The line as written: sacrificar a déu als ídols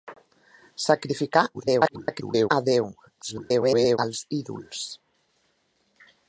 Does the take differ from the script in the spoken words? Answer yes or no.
yes